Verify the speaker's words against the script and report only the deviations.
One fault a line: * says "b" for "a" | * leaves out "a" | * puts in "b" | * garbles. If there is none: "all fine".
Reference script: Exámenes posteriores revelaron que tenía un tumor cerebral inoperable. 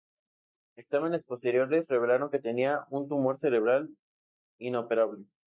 all fine